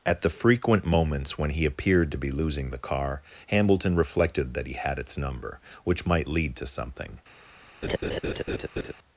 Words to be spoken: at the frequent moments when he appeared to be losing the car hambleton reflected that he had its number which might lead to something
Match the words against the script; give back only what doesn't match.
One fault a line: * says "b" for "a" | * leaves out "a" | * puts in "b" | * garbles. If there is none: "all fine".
all fine